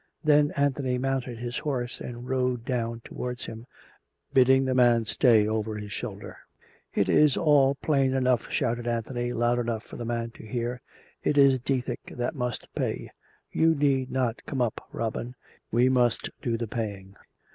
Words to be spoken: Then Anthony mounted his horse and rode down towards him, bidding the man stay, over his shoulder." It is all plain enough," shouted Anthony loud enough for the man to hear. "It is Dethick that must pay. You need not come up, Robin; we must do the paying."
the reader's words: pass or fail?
pass